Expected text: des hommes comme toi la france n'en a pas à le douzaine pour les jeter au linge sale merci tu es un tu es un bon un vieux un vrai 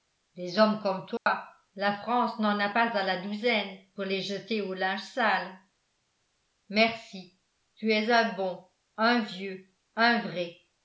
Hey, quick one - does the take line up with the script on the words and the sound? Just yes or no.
no